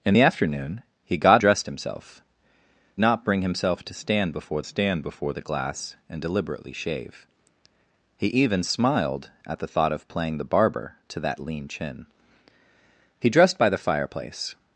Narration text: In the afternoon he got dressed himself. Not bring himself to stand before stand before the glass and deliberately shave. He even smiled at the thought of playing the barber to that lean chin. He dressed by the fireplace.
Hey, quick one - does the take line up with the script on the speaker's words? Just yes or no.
yes